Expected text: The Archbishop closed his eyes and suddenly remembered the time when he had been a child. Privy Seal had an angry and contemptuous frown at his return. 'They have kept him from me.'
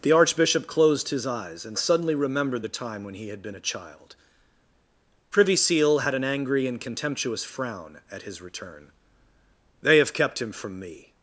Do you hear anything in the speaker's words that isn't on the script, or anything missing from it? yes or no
no